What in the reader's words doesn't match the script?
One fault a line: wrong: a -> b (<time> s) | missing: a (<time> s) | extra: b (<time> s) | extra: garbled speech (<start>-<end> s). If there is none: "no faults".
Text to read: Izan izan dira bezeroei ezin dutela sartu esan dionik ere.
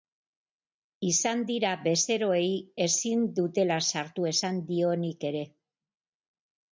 missing: izan (1.4 s)